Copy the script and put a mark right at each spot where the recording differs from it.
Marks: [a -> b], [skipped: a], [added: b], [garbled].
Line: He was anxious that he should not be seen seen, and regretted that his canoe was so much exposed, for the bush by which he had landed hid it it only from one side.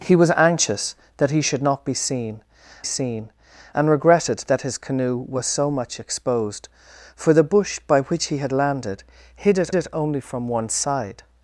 He was anxious that he should not be seen seen, and regretted that his canoe was so much exposed, for the bush by which he had landed hid it it only from one side.